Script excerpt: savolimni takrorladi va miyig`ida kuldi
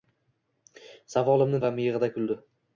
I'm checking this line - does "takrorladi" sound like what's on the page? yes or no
no